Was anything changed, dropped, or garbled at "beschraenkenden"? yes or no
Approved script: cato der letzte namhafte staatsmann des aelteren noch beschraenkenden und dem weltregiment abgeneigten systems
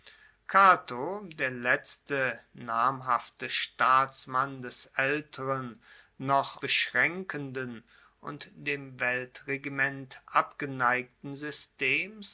no